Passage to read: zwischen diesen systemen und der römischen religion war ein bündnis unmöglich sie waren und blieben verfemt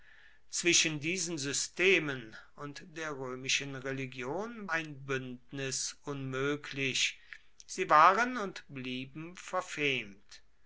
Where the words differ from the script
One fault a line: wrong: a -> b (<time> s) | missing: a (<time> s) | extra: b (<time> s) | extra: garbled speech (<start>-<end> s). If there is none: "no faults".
missing: war (4.7 s)